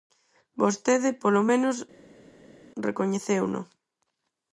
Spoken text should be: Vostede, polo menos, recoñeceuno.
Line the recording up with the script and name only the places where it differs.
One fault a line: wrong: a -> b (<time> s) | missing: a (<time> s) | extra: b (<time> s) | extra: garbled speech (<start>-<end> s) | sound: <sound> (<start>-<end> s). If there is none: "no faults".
no faults